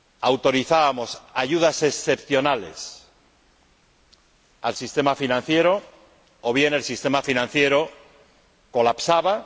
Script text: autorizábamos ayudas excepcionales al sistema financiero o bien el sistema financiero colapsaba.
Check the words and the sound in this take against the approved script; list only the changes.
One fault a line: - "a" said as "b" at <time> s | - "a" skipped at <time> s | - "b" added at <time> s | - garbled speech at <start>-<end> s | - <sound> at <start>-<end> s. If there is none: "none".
none